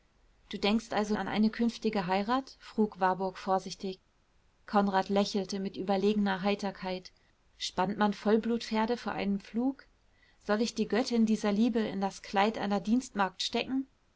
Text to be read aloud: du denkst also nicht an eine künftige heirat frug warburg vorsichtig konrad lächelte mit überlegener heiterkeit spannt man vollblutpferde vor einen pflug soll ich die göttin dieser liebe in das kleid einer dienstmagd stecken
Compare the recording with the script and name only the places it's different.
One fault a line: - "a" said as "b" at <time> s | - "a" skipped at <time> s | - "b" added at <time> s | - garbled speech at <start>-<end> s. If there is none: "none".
- "nicht" skipped at 1.1 s